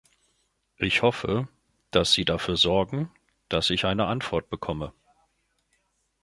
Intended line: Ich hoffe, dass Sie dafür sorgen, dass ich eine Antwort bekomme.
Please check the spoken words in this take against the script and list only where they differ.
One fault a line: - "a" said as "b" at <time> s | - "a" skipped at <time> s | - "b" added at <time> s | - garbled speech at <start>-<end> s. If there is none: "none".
none